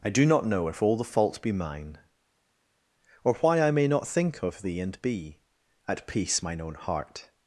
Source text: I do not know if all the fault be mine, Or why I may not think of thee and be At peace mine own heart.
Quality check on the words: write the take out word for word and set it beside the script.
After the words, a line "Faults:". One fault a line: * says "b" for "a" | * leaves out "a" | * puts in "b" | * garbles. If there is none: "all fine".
I do not know if all the fault be mine, Or why I may not think of thee and be At peace mine own heart.
Faults:
all fine